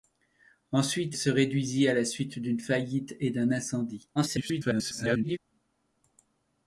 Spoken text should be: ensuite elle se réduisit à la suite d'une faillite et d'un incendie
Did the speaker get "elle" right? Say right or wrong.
wrong